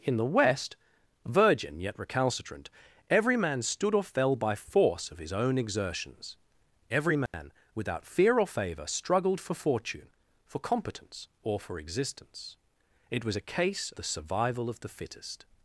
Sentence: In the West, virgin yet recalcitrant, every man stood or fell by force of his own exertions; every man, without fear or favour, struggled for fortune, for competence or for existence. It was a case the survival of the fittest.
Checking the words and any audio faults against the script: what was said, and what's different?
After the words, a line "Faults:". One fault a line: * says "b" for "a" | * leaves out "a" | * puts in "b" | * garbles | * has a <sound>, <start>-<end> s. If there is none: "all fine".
In the West, virgin yet recalcitrant, every man stood or fell by force of his own exertions; every man, without fear or favour, struggled for fortune, for competence or for existence. It was a case the survival of the fittest.
Faults:
* has a dropout, 7.3-7.3 s